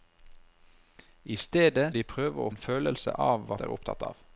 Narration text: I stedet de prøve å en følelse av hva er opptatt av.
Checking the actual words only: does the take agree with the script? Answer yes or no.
yes